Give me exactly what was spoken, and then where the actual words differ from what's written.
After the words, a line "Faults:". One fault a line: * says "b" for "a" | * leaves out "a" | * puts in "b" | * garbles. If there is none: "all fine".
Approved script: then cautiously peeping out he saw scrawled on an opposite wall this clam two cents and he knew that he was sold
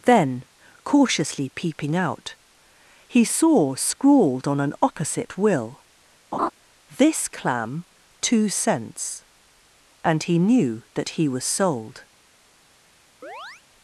then cautiously peeping out he saw scrawled on an opposite will this clam two cents and he knew that he was sold
Faults:
* says "will" for "wall"